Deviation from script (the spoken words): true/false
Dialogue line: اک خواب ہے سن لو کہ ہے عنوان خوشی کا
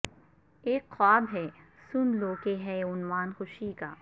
false